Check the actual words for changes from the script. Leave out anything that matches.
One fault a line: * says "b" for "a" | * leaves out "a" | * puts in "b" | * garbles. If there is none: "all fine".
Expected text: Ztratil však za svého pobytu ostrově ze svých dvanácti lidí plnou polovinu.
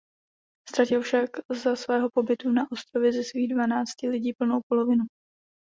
* puts in "na"